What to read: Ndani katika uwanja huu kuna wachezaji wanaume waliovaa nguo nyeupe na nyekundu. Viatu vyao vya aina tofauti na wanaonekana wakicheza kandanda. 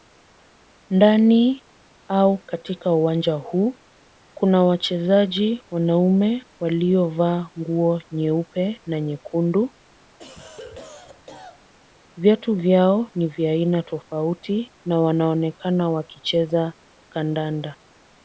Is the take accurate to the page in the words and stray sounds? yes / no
no